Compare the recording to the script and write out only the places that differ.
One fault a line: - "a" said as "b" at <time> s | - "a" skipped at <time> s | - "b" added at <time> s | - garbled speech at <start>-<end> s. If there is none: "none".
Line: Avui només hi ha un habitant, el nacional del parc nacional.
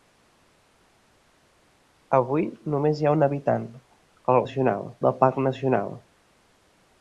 none